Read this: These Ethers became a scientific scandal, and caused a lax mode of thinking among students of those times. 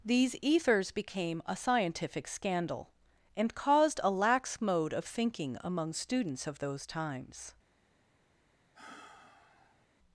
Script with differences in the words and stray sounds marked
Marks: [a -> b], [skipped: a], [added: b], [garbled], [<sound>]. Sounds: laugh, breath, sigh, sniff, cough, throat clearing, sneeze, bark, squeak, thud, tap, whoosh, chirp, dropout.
These Ethers became a scientific scandal, and caused a lax mode of thinking among students of those times. [sigh]